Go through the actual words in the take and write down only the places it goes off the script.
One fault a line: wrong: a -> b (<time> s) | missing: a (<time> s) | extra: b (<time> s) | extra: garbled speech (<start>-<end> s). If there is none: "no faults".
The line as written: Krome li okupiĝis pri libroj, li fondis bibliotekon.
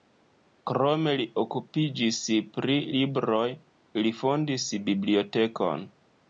no faults